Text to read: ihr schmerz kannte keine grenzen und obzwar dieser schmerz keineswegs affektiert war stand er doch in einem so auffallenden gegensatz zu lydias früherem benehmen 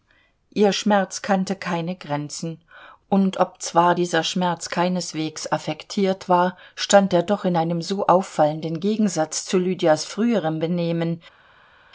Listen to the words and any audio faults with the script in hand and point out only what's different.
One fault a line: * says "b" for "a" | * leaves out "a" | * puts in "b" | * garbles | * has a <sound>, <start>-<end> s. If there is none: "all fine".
all fine